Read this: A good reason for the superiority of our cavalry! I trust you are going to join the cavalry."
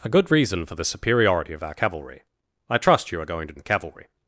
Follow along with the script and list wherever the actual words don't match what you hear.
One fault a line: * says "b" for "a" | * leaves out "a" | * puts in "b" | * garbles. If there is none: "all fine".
* leaves out "join"